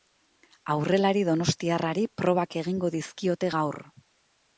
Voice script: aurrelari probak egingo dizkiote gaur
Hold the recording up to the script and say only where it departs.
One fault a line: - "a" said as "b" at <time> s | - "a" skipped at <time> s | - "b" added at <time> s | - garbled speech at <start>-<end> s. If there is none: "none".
- "donostiarrari" added at 1.3 s